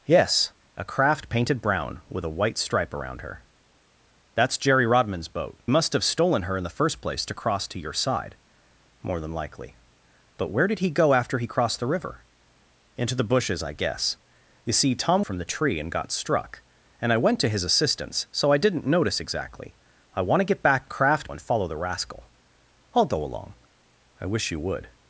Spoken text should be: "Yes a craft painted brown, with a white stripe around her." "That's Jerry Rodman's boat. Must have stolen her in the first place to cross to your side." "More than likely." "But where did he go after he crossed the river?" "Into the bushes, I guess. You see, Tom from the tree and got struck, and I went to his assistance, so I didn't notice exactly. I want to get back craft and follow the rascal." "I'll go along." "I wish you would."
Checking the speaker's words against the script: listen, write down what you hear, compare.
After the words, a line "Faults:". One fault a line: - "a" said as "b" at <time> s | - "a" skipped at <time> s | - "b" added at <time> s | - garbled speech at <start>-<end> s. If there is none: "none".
"Yes a craft painted brown, with a white stripe around her." "That's Jerry Rodman's boat. Must have stolen her in the first place to cross to your side." "More than likely." "But where did he go after he crossed the river?" "Into the bushes, I guess. You see, Tom from the tree and got struck, and I went to his assistance, so I didn't notice exactly. I want to get back craft and follow the rascal." "I'll go along." "I wish you would."
Faults:
none